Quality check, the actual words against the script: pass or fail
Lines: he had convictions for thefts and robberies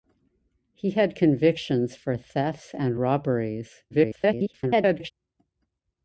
fail